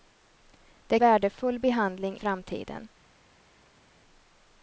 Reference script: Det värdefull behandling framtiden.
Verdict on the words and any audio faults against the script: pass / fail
pass